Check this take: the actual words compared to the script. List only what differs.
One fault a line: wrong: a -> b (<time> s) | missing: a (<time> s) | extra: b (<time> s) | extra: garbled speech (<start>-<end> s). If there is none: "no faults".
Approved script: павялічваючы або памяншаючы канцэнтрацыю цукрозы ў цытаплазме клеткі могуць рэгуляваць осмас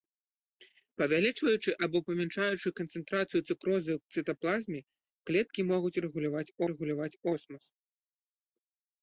extra: рэгуляваць (6.7 s)